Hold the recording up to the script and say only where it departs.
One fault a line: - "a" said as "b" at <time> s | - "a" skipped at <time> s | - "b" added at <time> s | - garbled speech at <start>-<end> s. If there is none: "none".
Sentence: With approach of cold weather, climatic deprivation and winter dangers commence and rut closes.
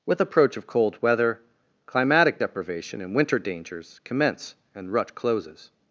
none